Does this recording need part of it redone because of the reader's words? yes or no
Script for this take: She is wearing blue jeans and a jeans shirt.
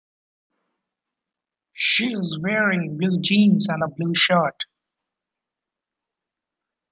yes